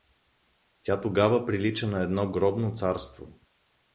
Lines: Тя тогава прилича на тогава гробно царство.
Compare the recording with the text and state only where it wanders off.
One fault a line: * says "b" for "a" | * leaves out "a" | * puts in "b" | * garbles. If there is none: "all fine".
* says "едно" for "тогава"